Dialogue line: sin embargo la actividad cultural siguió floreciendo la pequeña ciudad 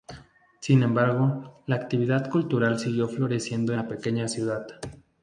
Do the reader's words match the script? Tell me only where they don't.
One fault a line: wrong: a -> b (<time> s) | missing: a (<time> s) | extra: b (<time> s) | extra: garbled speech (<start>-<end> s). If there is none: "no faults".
no faults